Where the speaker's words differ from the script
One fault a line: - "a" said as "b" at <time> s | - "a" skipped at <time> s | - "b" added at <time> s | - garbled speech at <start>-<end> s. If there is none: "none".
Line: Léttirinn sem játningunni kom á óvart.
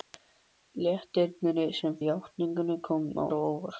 none